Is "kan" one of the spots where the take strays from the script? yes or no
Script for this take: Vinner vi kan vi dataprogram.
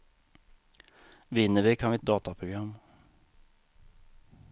no